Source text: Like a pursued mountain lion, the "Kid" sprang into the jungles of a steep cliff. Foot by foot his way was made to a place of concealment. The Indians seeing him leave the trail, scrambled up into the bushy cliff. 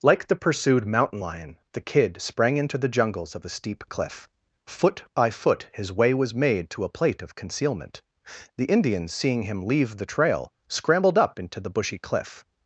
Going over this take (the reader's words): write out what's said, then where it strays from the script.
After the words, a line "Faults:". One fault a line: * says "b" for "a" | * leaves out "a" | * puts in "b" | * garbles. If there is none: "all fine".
Like the pursued mountain lion, the "Kid" sprang into the jungles of a steep cliff. Foot by foot his way was made to a plate of concealment. The Indians seeing him leave the trail, scrambled up into the bushy cliff.
Faults:
* says "the" for "a"
* says "plate" for "place"